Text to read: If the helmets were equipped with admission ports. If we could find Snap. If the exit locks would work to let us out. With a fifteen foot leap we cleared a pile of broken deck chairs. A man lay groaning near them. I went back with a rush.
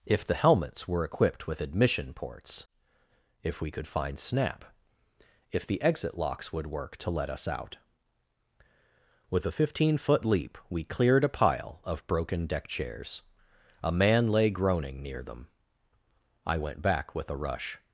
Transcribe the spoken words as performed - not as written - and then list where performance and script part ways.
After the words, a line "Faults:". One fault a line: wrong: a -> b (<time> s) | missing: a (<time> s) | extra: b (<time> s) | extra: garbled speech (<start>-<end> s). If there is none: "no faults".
If the helmets were equipped with admission ports. If we could find Snap. If the exit locks would work to let us out. With a fifteen foot leap we cleared a pile of broken deck chairs. A man lay groaning near them. I went back with a rush.
Faults:
no faults